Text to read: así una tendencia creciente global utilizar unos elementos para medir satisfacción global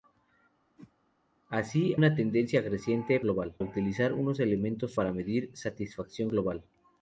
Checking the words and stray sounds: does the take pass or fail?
fail